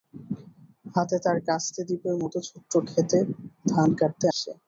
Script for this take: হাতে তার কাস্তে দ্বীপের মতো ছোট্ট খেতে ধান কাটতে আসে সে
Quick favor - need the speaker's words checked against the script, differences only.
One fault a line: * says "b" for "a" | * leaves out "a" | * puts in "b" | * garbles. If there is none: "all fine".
* leaves out "আসে"